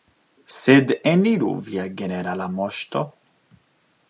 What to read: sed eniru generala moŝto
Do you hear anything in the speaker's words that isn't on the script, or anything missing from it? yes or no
yes